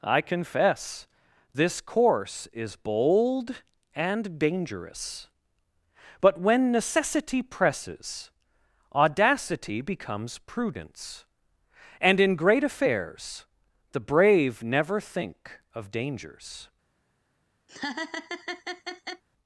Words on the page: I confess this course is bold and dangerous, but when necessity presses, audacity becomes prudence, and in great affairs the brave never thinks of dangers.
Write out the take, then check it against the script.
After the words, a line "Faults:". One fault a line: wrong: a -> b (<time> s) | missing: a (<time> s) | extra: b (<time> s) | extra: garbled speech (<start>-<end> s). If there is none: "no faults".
I confess this course is bold and dangerous, but when necessity presses, audacity becomes prudence, and in great affairs the brave never think of dangers.
Faults:
wrong: thinks -> think (15.0 s)